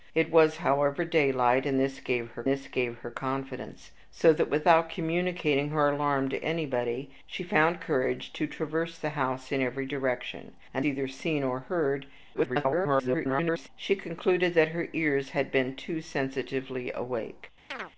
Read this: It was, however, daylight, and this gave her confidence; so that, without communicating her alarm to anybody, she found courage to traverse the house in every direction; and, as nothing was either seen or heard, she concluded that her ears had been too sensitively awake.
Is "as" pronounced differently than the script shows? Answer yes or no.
yes